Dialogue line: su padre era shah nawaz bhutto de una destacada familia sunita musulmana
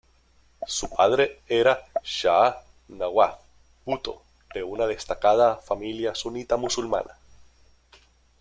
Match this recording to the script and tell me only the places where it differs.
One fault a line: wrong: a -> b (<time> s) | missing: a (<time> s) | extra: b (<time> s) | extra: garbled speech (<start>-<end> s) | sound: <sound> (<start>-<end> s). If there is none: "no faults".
no faults